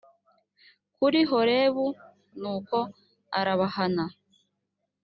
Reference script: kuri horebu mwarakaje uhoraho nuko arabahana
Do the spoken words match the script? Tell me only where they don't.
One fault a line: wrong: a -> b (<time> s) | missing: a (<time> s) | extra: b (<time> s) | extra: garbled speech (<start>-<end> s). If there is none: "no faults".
missing: mwarakaje uhoraho (1.9 s)